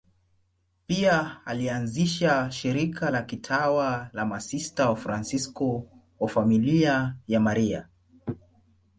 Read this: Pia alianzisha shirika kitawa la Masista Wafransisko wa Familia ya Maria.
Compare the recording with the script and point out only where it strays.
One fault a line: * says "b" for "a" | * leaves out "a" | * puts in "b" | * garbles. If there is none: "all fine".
* puts in "la"